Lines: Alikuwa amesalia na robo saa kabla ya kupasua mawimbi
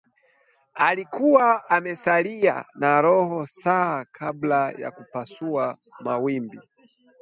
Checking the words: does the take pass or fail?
pass